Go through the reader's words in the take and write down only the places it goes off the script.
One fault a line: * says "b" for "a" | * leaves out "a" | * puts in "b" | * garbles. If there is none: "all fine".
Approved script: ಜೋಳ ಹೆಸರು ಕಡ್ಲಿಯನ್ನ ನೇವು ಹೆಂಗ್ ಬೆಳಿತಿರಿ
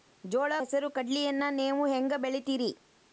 all fine